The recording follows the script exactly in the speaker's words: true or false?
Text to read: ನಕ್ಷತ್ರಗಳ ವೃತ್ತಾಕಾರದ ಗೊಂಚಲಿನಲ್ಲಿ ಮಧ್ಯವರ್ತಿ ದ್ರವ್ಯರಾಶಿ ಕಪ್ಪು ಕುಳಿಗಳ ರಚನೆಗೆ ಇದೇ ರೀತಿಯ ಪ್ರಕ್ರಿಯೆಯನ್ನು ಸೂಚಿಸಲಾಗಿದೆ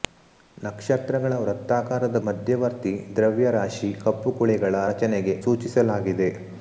false